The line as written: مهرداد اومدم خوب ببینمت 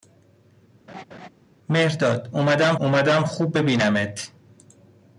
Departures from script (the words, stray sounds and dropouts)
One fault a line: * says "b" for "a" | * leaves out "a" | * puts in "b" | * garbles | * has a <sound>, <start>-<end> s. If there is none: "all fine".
* has a laugh, 0.9-1.3 s
* puts in "اومدم"